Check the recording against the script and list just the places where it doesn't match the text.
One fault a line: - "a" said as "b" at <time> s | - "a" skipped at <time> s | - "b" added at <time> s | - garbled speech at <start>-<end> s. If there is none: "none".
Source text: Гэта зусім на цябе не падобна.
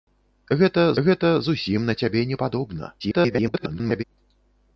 - "гэта" added at 1.1 s
- garbled speech at 3.0-4.0 s